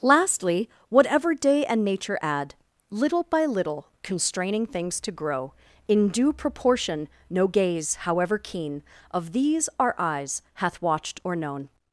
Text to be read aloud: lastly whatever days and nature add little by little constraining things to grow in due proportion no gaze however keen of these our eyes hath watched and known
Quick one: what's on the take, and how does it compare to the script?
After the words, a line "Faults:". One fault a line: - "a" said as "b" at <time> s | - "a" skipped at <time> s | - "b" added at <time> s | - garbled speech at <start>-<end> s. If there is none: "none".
lastly whatever day and nature add little by little constraining things to grow in due proportion no gaze however keen of these our eyes hath watched or known
Faults:
- "days" said as "day" at 1.4 s
- "and" said as "or" at 11.2 s